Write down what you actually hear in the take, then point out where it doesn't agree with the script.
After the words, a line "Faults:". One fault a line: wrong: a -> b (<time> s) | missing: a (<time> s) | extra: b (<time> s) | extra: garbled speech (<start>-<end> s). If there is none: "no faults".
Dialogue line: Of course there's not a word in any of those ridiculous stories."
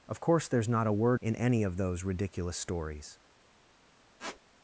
Of course there's not a word in any of those ridiculous stories."
Faults:
no faults